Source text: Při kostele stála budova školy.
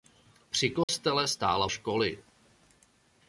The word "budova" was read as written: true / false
false